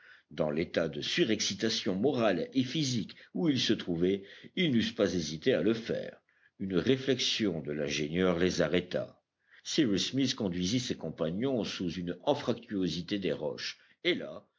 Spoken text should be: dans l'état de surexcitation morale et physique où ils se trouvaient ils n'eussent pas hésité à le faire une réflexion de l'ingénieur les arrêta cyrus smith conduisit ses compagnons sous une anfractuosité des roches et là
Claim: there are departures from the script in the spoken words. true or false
false